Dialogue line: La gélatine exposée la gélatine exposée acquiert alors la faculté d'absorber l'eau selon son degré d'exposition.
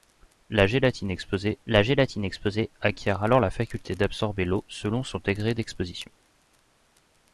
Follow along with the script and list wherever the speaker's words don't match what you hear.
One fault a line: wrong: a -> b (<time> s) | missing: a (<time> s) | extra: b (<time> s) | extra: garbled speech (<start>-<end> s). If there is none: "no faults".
no faults